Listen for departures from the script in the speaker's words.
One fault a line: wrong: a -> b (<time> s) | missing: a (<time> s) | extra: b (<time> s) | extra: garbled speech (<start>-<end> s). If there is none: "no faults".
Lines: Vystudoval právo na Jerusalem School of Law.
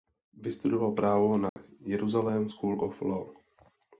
no faults